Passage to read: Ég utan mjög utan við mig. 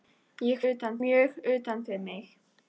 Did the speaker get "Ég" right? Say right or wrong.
right